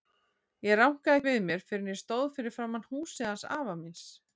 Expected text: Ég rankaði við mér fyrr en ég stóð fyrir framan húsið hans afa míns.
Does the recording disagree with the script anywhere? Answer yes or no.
no